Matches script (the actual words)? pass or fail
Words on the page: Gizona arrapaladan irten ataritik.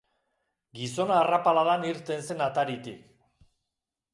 fail